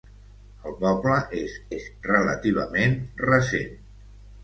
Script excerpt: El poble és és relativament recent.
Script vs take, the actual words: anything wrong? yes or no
no